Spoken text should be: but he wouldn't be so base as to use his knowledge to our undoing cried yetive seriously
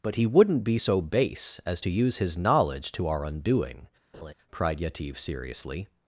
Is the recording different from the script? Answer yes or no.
no